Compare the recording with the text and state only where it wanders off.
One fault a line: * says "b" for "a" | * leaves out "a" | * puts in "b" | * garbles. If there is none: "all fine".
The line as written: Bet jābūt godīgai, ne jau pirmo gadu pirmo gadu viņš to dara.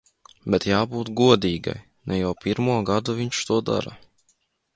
* leaves out "pirmo gadu"